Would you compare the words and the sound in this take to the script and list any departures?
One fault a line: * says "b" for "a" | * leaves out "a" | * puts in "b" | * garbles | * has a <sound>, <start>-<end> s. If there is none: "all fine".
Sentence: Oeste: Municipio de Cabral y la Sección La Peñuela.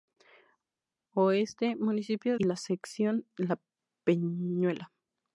* leaves out "de Cabral"